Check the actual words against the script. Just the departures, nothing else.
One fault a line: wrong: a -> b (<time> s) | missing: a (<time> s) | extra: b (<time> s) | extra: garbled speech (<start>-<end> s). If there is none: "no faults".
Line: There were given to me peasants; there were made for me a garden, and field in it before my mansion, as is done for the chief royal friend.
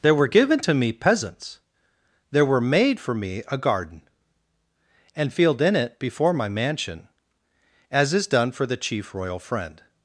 no faults